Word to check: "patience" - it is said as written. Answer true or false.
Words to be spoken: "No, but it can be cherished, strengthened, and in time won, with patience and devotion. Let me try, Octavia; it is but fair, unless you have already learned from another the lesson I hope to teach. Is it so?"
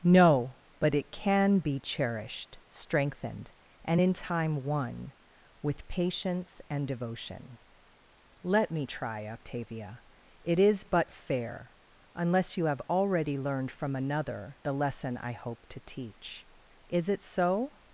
true